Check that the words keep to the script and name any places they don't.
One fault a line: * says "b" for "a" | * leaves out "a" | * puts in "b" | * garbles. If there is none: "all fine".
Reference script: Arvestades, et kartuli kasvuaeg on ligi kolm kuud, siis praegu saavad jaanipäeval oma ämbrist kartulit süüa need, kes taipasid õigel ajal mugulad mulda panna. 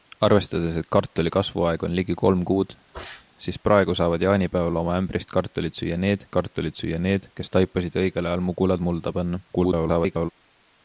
* puts in "kartulit süüa need"
* garbles